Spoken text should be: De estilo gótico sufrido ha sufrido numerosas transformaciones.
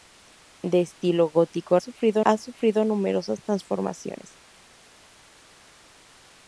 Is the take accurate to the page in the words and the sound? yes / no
yes